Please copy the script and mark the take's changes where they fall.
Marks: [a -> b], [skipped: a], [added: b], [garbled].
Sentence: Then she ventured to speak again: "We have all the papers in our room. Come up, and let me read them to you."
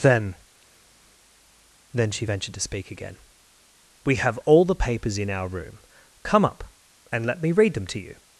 Then [added: then] she ventured to speak again: "We have all the papers in our room. Come up, and let me read them to you."